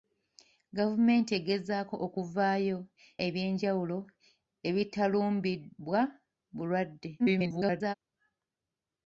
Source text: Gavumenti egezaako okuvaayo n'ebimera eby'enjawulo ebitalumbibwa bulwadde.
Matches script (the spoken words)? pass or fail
fail